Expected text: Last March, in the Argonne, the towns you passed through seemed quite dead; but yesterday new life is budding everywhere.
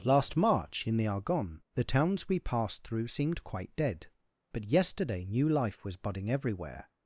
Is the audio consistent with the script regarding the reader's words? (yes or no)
no